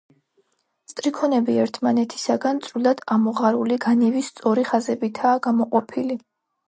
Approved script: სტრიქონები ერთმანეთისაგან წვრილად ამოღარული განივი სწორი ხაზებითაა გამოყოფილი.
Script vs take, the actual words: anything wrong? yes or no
no